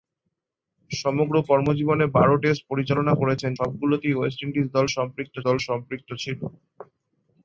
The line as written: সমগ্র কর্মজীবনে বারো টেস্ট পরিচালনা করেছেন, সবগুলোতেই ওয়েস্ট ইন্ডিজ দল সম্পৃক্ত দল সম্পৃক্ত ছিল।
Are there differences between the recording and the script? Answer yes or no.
no